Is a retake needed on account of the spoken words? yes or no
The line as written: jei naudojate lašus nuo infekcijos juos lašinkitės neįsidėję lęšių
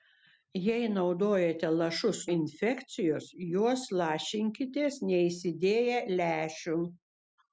yes